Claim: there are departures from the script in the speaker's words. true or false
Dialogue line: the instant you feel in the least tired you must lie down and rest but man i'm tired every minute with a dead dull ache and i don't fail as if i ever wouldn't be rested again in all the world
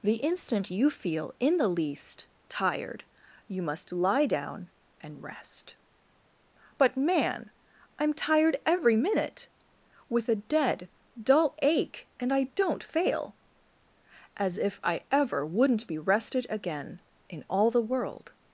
false